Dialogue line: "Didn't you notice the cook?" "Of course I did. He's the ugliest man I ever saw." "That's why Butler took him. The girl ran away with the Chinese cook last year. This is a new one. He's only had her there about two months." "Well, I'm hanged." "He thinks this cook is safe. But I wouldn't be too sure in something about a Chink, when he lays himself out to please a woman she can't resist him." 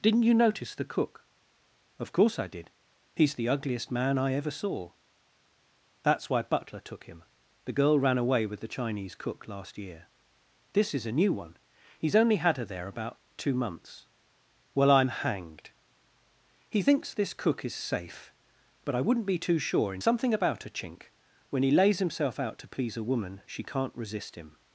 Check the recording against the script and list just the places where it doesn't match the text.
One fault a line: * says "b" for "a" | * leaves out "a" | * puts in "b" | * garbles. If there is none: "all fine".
all fine